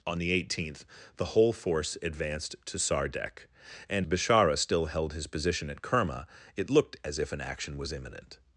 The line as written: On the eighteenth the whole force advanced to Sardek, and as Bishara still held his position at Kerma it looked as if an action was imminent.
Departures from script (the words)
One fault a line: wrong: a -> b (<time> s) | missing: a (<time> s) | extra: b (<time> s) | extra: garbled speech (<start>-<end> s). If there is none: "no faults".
missing: as (4.1 s)